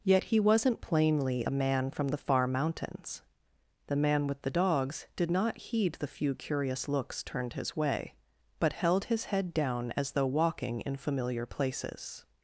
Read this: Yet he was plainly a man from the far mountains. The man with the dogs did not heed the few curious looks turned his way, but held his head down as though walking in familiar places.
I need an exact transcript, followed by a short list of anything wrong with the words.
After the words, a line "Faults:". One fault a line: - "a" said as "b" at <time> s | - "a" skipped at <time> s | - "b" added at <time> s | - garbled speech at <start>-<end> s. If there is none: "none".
Yet he wasn't plainly a man from the far mountains. The man with the dogs did not heed the few curious looks turned his way, but held his head down as though walking in familiar places.
Faults:
- "was" said as "wasn't" at 0.4 s